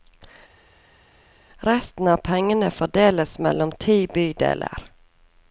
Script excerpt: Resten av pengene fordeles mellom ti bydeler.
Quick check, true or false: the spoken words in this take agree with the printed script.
true